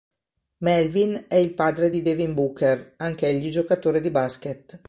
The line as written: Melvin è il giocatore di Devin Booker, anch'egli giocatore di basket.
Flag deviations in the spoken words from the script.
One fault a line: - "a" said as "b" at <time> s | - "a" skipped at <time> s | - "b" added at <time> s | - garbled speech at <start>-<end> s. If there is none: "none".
- "giocatore" said as "padre" at 1.5 s